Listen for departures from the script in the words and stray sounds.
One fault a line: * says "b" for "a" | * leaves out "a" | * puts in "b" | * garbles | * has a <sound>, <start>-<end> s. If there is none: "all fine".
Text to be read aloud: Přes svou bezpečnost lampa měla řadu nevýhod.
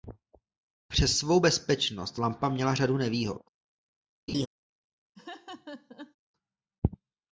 * has a laugh, 4.3-4.5 s
* has a laugh, 5.2-6.2 s